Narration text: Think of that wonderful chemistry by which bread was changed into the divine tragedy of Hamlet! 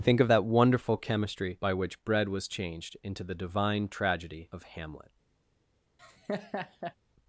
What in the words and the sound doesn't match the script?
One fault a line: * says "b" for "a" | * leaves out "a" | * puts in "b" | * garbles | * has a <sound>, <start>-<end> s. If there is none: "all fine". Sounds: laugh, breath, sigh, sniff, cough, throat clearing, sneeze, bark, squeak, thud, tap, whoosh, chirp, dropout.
* has a laugh, 6.0-6.9 s